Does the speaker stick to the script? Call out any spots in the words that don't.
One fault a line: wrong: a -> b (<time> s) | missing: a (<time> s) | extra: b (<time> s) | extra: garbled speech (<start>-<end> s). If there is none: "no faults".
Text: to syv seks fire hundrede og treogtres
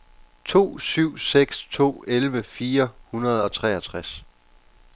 extra: to elleve (1.7 s)